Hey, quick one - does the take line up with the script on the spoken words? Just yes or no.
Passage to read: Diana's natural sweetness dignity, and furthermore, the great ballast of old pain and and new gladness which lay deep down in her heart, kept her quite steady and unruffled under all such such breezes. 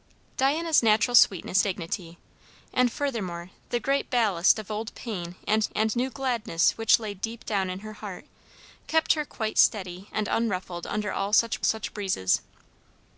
yes